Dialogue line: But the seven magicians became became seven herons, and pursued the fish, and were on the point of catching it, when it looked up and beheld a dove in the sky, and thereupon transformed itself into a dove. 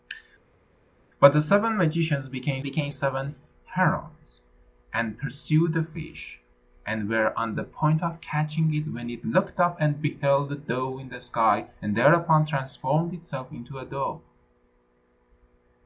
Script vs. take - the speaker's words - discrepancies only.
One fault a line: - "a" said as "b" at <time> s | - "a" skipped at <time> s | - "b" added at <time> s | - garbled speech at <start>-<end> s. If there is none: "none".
none